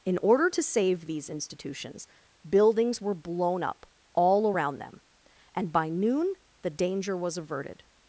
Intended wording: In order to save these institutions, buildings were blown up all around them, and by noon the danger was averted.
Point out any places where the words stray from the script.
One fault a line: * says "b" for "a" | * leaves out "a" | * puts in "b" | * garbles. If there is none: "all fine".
all fine